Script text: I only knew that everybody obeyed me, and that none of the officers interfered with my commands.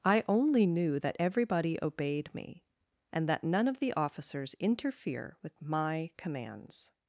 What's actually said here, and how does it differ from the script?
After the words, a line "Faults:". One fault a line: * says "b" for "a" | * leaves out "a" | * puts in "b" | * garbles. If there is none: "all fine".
I only knew that everybody obeyed me, and that none of the officers interfere with my commands.
Faults:
* says "interfere" for "interfered"